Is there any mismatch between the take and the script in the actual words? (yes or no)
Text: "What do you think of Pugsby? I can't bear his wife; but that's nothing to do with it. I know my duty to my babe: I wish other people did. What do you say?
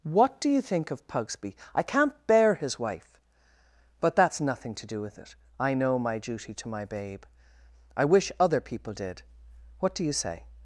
no